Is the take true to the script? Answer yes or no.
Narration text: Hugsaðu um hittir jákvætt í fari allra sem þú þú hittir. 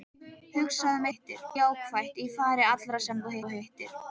yes